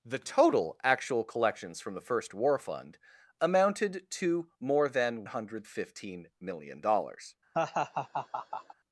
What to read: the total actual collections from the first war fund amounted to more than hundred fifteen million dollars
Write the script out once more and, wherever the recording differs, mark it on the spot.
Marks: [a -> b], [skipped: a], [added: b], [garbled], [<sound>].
the total actual collections from the first war fund amounted to more than hundred fifteen million dollars [laugh]